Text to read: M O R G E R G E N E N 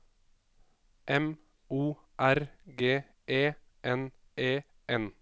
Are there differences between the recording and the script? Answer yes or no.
yes